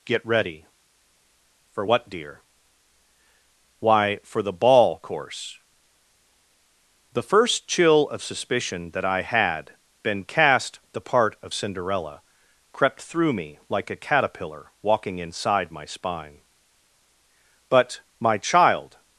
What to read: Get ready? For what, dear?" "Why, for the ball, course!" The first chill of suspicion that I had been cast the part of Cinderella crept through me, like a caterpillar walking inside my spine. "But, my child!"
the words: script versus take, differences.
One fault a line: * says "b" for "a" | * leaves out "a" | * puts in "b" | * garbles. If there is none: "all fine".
all fine